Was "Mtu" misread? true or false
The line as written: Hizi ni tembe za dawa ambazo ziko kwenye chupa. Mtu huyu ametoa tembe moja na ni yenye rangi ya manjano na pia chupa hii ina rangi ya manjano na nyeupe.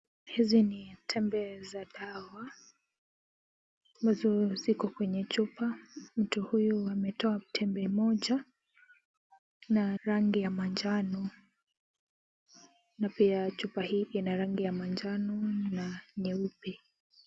false